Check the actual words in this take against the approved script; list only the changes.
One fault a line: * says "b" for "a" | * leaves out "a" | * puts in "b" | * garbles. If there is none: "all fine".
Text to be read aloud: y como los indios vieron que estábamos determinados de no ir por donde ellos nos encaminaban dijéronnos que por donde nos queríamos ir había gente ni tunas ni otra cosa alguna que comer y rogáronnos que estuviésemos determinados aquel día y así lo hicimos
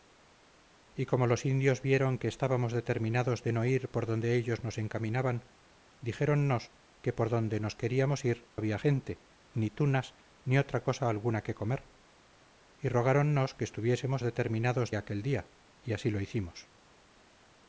all fine